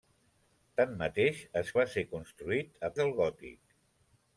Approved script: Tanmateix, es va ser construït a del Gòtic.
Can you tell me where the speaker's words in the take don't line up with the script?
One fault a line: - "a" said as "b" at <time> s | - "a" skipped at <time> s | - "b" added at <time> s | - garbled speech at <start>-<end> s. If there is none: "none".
none